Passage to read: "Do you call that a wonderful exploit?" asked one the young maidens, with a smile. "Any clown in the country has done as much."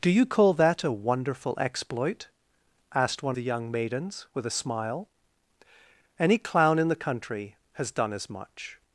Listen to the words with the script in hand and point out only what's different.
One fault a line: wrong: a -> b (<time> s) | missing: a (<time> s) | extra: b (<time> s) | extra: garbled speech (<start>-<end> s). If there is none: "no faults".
no faults